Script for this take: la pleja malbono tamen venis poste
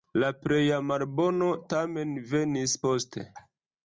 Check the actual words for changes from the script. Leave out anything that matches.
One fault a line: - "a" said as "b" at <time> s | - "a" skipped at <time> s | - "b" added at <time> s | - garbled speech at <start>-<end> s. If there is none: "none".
none